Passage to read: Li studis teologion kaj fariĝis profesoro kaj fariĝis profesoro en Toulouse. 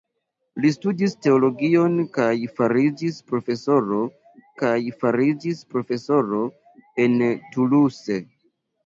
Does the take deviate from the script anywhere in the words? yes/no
no